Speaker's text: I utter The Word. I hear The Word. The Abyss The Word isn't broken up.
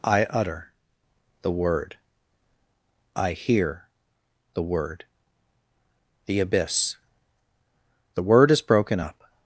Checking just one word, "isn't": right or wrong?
wrong